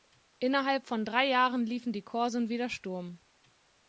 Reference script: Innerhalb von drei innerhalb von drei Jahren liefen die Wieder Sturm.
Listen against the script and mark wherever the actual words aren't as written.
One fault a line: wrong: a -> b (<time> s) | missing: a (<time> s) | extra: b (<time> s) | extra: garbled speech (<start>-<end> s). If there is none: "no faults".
missing: innerhalb von drei (1.3 s)
extra: Korsen (2.0 s)